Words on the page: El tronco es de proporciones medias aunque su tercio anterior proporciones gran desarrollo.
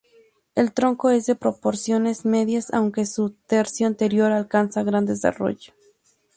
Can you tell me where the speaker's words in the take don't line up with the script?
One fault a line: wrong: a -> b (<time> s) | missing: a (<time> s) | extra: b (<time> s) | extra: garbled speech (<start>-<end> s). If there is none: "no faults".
wrong: proporciones -> alcanza (4.3 s)